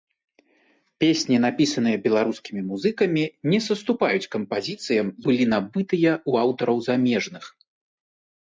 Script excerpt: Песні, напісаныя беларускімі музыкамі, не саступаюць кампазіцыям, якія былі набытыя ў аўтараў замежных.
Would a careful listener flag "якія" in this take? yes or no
yes